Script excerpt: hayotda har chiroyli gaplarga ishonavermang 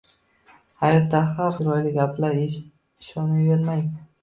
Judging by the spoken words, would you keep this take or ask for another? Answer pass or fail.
pass